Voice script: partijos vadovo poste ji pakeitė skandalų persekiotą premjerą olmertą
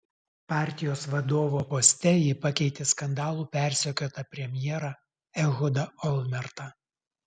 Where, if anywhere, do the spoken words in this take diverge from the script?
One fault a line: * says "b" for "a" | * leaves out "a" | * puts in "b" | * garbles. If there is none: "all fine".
* puts in "ehudą"